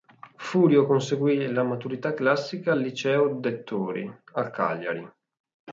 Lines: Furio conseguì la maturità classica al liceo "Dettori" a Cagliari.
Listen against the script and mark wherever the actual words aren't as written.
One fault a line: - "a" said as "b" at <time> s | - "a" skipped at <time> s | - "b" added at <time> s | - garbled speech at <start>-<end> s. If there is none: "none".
none